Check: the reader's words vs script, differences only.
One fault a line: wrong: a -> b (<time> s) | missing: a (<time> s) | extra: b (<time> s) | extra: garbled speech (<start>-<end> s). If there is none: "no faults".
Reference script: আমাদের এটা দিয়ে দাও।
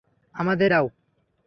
missing: এটা দিয়ে (0.7 s)